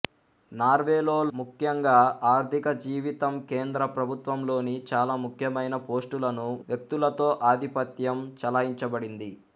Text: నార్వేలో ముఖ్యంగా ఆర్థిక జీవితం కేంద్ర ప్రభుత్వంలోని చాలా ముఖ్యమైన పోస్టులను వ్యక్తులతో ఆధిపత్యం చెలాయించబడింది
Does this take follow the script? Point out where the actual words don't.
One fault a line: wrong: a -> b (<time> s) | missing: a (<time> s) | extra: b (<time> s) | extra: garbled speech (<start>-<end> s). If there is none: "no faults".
no faults